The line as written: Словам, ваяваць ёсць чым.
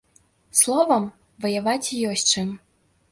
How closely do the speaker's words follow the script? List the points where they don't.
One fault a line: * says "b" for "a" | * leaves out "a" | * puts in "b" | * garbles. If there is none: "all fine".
all fine